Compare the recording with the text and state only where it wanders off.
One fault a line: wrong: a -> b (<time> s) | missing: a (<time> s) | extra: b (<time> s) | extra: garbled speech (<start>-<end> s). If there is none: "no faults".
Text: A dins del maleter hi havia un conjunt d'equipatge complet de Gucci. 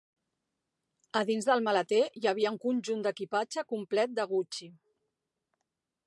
no faults